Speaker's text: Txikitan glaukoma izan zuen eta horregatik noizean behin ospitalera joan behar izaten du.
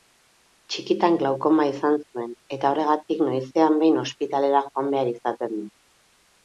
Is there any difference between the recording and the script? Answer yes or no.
no